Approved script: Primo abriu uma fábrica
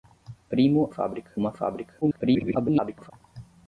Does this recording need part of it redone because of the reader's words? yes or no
yes